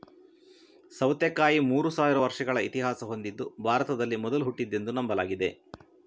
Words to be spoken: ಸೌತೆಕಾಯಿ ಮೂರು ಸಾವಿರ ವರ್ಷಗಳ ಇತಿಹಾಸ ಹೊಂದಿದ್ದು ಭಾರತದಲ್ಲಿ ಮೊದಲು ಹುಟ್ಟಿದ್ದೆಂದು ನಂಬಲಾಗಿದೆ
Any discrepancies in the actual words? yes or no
no